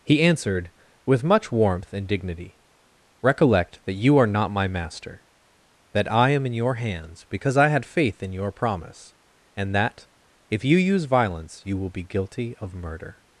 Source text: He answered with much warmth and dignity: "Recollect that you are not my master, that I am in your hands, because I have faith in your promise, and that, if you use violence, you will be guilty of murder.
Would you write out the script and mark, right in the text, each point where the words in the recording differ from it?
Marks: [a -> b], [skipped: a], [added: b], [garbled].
He answered with much warmth and dignity: "Recollect that you are not my master, that I am in your hands, because I [have -> had] faith in your promise, and that, if you use violence, you will be guilty of murder.